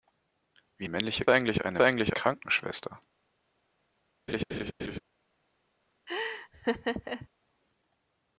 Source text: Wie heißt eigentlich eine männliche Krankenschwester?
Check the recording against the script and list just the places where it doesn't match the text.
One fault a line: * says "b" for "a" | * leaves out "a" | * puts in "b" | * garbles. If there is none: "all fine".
* says "männliche" for "heißt"
* says "eigentlich" for "männliche"